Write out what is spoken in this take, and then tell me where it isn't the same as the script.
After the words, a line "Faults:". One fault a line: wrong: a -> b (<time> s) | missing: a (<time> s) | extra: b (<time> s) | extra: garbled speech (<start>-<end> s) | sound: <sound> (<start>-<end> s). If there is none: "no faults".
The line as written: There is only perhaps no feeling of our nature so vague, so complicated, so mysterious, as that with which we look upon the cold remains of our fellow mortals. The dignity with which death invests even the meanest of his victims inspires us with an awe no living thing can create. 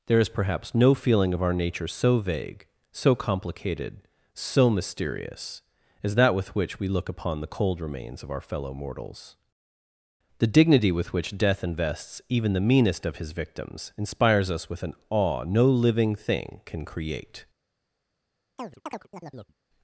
There is perhaps no feeling of our nature so vague, so complicated, so mysterious, as that with which we look upon the cold remains of our fellow mortals. The dignity with which death invests even the meanest of his victims inspires us with an awe no living thing can create.
Faults:
missing: only (0.3 s)
sound: chirp (18.6-19.5 s)